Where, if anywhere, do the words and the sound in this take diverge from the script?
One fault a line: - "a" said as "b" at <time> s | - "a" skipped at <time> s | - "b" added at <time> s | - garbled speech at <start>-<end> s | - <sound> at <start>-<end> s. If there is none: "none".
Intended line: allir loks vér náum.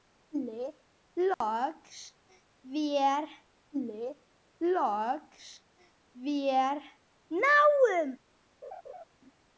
- dropout at 1.3-1.4 s
- "allir loks vér" added at 3.7 s
- laugh at 8.6-9.0 s